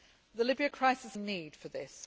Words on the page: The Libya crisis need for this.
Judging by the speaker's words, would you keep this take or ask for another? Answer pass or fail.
pass